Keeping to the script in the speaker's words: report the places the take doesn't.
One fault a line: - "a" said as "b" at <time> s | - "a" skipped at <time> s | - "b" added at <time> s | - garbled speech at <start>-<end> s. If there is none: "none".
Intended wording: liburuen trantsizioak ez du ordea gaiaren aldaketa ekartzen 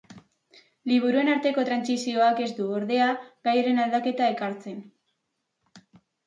- "arteko" added at 1.3 s